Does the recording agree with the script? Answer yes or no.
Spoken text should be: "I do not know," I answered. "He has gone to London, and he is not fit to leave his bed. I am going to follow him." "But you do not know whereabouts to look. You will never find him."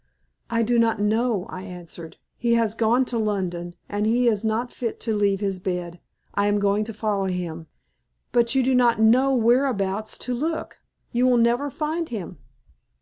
yes